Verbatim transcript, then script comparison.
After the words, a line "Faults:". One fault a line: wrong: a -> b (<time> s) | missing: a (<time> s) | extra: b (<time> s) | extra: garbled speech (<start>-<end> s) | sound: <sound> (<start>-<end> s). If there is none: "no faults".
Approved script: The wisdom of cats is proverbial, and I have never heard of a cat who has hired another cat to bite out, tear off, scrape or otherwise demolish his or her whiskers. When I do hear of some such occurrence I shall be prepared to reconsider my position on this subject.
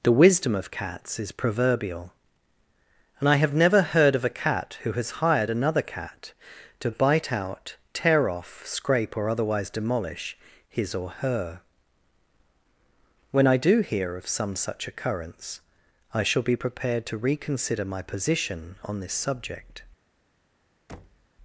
The wisdom of cats is proverbial, and I have never heard of a cat who has hired another cat to bite out, tear off, scrape or otherwise demolish his or her. When I do hear of some such occurrence I shall be prepared to reconsider my position on this subject.
Faults:
missing: whiskers (11.6 s)
sound: thud (20.9-21.3 s)